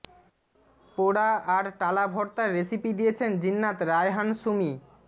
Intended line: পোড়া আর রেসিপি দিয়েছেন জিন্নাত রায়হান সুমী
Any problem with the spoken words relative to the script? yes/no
yes